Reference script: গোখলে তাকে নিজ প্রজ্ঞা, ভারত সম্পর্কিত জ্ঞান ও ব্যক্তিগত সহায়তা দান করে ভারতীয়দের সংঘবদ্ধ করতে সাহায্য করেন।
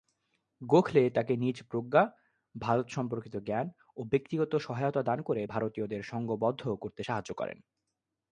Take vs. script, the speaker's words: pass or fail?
pass